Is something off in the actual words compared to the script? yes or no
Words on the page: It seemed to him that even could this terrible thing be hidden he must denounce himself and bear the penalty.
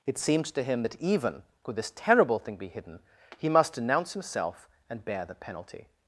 no